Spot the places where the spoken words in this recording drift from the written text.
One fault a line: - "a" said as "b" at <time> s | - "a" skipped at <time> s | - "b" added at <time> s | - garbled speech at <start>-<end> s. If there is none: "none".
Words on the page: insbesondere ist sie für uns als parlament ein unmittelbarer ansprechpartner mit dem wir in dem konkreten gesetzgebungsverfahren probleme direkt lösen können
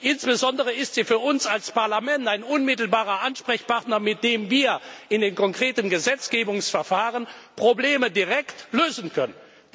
- "dem" said as "den" at 5.2 s